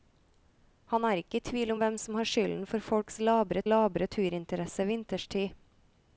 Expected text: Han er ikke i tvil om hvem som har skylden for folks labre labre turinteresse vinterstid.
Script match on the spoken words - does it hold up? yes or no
yes